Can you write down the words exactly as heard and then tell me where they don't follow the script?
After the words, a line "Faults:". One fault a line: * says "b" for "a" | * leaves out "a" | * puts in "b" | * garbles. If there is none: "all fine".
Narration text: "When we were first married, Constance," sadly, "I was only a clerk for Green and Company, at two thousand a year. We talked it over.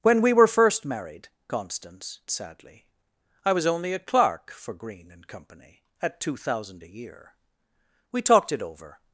"When we were first married, Constance," sadly, "I was only a clerk for Green and Company, at two thousand a year. We talked it over.
Faults:
all fine